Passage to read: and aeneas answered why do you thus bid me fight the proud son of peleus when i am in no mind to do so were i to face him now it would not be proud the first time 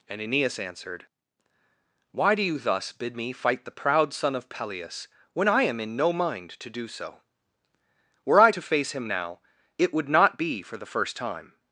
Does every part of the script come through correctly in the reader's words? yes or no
no